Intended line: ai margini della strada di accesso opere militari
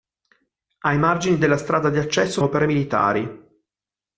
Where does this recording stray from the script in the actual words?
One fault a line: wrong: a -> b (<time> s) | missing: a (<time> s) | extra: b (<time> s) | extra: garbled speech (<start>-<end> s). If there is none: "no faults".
no faults